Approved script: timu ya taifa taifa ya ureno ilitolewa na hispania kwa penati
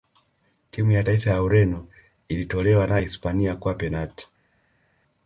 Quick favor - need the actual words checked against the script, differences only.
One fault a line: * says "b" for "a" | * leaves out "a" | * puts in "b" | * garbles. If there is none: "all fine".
* leaves out "taifa"